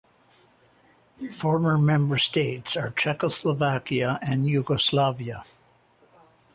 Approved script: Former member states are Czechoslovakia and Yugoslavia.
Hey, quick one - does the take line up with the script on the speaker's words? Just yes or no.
yes